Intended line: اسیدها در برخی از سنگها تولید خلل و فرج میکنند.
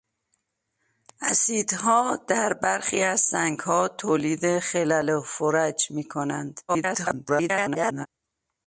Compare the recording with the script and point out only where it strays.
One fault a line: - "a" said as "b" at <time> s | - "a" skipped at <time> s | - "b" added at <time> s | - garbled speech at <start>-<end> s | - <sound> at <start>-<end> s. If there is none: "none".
- garbled speech at 6.7-8.1 s